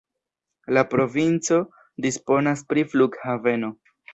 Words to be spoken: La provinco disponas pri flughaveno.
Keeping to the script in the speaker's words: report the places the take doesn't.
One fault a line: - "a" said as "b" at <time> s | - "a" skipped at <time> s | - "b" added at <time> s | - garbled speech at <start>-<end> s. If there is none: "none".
none